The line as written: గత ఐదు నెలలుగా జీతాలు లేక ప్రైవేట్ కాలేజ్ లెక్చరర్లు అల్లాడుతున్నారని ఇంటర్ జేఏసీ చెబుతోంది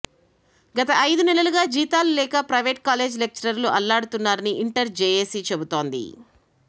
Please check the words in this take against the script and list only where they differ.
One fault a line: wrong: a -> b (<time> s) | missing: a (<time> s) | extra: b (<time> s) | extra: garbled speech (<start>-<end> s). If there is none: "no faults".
no faults